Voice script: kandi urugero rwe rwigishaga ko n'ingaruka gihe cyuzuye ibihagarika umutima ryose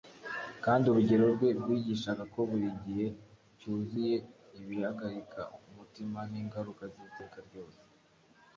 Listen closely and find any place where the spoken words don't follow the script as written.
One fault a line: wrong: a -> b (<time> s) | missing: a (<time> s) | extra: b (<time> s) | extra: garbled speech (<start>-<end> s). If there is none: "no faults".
wrong: n'ingaruka -> buri (2.5 s)
extra: n'ingaruka z'iteka (6.3 s)